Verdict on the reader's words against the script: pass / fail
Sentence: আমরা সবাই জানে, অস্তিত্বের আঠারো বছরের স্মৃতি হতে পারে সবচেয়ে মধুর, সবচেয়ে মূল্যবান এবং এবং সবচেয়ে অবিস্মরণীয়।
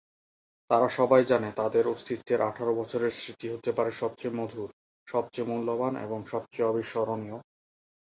fail